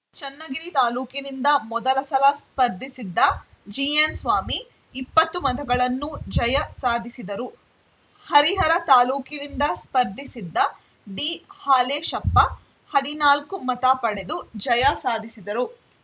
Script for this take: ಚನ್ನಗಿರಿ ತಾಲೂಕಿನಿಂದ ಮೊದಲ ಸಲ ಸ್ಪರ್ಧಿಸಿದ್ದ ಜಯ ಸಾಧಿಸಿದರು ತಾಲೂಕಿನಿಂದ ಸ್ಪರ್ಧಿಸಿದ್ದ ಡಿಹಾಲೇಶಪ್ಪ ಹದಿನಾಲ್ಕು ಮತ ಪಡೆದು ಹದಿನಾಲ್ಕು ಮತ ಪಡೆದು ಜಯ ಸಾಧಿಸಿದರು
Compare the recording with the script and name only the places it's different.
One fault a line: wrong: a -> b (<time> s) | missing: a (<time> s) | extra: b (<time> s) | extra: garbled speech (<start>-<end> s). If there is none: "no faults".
extra: ಜಿಎನ್‌ಸ್ವಾಮಿ ಇಪ್ಪತ್ತು ಮತಗಳನ್ನು (3.7 s)
extra: ಹರಿಹರ (8.3 s)
missing: ಹದಿನಾಲ್ಕು ಮತ ಪಡೆದು (14.4 s)